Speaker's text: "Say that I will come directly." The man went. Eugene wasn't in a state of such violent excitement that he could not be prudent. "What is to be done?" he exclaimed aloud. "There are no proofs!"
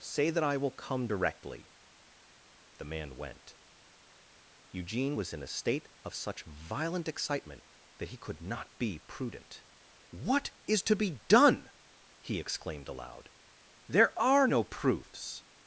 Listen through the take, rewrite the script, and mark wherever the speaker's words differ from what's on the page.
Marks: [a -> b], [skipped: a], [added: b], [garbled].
"Say that I will come directly." The man went. Eugene [wasn't -> was] in a state of such violent excitement that he could not be prudent. "What is to be done?" he exclaimed aloud. "There are no proofs!"